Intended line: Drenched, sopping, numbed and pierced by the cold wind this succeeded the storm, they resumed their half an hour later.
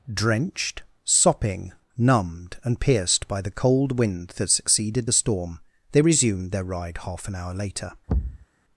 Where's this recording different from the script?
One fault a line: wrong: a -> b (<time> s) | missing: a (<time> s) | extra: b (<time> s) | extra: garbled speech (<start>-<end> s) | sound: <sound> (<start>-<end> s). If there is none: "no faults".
wrong: this -> that (4.4 s)
extra: ride (6.6 s)
sound: thud (8.1-8.5 s)